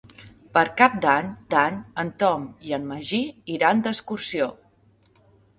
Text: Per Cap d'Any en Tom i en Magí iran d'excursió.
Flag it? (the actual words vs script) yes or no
yes